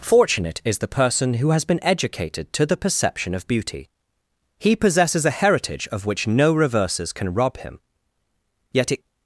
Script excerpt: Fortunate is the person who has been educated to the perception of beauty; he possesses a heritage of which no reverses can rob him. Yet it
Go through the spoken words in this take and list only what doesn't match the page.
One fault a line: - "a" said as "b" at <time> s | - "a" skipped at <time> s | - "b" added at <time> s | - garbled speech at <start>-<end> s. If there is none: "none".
none